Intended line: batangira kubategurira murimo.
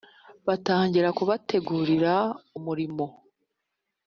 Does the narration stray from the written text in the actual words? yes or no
no